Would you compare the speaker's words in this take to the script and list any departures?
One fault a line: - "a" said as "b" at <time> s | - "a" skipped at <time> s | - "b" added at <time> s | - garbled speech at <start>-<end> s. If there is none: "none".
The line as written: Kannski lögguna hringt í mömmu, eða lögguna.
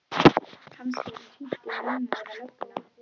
- "lögguna" said as "yrði" at 1.1 s